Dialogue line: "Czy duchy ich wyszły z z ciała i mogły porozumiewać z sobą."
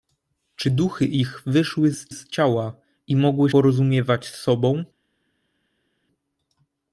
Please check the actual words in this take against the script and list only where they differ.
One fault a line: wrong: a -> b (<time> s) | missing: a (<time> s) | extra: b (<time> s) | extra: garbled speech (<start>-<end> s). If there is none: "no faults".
no faults